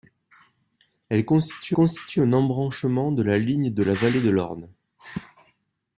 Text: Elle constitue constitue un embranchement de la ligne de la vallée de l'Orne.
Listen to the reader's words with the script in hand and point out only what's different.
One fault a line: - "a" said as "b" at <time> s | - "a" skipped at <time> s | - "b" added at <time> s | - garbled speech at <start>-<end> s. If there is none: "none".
none